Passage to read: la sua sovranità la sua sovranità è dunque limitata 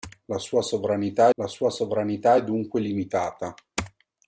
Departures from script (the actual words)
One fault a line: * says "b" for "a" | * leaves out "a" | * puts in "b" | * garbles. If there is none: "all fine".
all fine